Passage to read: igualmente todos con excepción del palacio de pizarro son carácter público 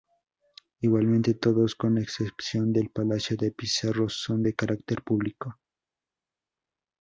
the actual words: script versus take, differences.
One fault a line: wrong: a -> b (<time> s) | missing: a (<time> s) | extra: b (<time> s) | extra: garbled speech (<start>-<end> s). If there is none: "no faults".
extra: de (4.4 s)